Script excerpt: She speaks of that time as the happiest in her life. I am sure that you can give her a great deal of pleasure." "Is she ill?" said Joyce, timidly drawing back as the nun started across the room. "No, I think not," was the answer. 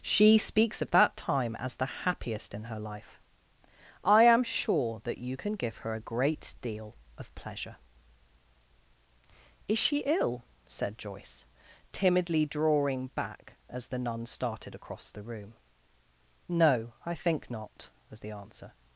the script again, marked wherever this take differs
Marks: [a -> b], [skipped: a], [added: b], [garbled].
She speaks of that time as the happiest in her life. I am sure that you can give her a great deal of pleasure." "Is she ill?" said Joyce, timidly drawing back as the nun started across the room. "No, I think not," was the answer.